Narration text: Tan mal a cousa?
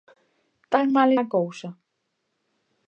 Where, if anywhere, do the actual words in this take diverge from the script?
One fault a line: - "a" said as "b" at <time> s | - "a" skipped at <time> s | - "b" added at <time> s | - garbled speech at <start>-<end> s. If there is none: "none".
none